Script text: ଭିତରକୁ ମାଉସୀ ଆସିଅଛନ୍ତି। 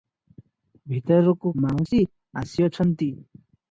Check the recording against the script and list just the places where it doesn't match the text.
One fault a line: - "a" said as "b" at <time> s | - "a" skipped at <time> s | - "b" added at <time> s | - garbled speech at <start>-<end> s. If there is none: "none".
none